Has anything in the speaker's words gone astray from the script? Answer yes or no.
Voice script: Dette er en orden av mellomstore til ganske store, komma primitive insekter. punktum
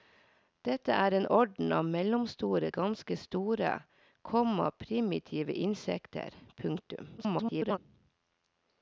yes